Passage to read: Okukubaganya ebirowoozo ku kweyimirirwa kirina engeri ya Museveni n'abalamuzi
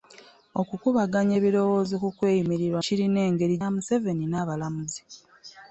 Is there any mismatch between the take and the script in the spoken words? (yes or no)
no